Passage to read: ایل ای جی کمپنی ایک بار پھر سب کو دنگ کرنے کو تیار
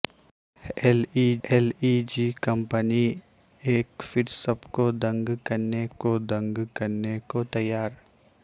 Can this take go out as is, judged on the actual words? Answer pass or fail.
fail